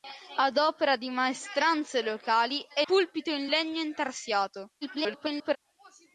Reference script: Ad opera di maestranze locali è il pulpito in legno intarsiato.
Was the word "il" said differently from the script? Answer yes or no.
yes